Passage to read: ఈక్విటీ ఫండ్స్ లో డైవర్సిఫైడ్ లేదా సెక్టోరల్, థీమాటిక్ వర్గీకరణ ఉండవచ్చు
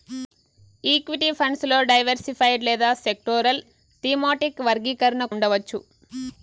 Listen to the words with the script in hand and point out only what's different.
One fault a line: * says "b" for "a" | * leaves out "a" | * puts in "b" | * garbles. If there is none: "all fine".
all fine